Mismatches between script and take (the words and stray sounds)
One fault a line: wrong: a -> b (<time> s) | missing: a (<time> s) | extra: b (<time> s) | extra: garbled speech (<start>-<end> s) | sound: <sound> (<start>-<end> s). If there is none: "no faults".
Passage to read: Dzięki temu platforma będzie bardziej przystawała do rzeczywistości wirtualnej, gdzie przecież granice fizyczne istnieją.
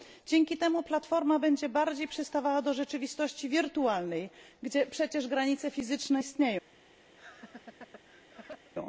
sound: laugh (7.2-8.7 s)